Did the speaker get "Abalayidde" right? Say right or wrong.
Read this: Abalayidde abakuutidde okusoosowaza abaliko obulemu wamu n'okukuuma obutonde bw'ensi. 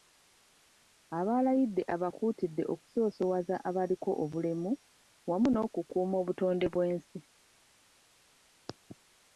right